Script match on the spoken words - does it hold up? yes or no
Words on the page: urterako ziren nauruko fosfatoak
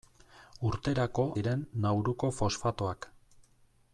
yes